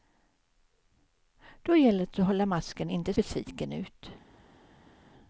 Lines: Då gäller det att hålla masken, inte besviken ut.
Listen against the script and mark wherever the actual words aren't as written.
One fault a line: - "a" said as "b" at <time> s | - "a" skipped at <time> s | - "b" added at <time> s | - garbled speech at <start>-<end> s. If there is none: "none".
none